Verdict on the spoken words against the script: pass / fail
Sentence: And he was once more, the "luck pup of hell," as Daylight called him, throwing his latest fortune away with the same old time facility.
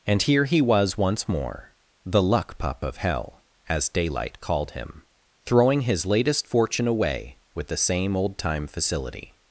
fail